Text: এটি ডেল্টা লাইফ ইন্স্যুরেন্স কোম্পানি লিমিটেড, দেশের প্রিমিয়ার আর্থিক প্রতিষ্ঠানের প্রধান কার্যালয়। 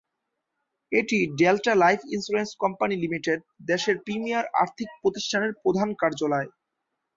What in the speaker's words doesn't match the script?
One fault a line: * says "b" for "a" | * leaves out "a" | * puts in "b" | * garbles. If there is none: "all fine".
all fine